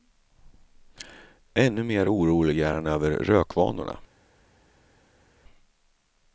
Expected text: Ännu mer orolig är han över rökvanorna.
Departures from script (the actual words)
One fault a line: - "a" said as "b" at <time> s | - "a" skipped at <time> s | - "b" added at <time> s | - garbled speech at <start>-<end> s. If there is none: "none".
none